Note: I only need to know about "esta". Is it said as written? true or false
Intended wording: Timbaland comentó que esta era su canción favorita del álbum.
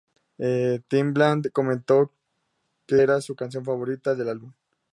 false